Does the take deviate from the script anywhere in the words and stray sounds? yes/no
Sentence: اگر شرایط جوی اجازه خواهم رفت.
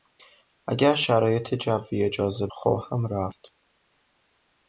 no